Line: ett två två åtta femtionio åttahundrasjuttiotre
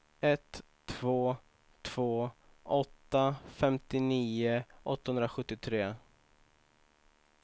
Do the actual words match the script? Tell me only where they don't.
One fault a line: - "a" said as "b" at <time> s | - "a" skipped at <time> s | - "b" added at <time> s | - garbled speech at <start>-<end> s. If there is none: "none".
none